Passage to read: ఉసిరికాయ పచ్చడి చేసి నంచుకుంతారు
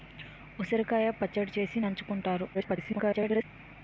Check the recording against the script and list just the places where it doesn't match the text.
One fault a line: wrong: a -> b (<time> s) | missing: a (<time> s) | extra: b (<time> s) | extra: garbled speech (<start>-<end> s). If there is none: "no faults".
extra: garbled speech (2.5-3.4 s)